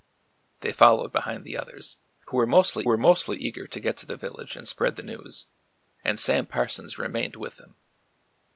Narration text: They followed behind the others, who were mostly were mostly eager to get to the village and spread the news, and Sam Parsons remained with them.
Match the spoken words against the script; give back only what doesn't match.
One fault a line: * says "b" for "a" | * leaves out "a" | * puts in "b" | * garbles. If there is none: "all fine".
all fine